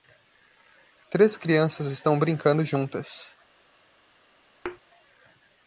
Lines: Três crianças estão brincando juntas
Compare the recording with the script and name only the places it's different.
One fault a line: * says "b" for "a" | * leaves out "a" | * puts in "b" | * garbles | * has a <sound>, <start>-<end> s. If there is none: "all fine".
* has a thud, 4.6-4.8 s